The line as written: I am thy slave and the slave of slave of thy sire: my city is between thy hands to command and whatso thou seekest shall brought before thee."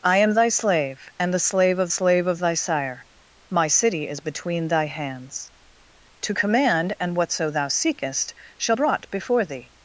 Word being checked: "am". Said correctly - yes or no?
yes